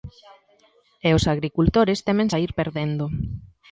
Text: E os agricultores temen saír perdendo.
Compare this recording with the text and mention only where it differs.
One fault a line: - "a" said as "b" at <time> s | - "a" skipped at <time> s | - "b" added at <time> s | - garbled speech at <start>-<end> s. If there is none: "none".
none